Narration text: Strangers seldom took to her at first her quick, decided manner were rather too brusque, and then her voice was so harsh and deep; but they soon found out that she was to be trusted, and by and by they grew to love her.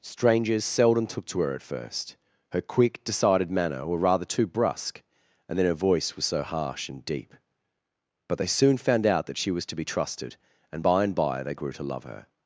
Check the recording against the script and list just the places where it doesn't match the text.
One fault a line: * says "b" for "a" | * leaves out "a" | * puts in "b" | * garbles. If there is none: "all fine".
all fine